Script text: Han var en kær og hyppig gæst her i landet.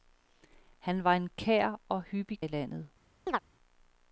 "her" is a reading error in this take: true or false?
true